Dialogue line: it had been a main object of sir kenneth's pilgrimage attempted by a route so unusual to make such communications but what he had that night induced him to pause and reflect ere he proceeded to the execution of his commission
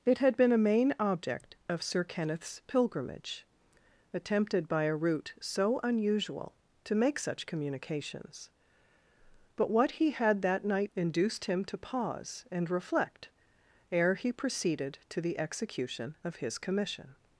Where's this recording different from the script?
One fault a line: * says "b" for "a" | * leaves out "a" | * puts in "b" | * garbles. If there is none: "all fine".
all fine